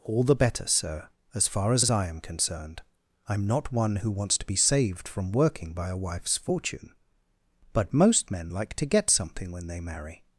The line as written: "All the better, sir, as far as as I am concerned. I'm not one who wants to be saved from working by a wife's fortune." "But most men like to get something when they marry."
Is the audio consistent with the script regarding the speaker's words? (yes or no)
yes